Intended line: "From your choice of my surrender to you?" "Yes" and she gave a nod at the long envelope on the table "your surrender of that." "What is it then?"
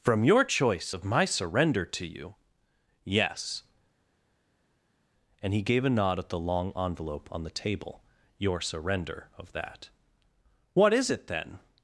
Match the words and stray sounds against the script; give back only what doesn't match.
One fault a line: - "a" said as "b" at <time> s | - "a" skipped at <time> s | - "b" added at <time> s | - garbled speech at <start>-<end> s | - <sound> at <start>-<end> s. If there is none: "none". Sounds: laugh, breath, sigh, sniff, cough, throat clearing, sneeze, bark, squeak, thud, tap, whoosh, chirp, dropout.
- "she" said as "he" at 5.5 s